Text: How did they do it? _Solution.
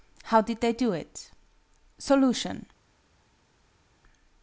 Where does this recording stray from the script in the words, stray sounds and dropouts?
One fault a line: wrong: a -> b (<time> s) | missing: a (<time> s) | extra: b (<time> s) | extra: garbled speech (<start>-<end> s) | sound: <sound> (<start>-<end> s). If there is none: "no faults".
no faults